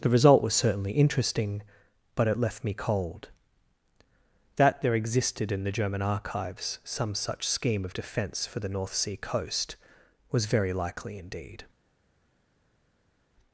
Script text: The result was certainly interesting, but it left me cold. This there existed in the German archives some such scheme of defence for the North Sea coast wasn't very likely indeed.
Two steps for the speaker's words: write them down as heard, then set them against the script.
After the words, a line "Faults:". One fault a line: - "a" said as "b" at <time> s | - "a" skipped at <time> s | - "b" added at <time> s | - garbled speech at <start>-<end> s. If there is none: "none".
The result was certainly interesting, but it left me cold. That there existed in the German archives some such scheme of defence for the North Sea coast was very likely indeed.
Faults:
- "This" said as "That" at 4.6 s
- "wasn't" said as "was" at 10.3 s